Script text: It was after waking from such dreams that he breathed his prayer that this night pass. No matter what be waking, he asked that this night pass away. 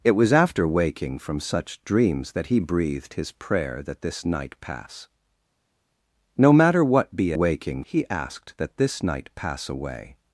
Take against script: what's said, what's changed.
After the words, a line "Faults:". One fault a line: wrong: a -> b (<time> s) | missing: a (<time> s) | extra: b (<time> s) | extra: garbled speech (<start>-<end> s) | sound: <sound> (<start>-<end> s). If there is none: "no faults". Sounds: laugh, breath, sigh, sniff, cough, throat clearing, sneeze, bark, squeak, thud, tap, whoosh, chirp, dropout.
It was after waking from such dreams that he breathed his prayer that this night pass. No matter what be waking, he asked that this night pass away.
Faults:
no faults